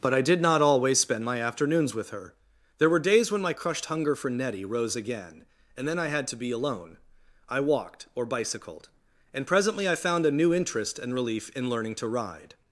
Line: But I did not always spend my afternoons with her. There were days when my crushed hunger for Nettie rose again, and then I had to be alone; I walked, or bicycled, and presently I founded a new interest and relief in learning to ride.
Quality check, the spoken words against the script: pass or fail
fail